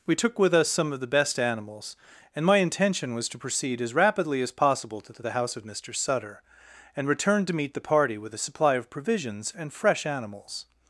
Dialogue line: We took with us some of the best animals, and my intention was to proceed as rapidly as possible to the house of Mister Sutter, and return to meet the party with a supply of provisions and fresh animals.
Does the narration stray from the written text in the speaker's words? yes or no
yes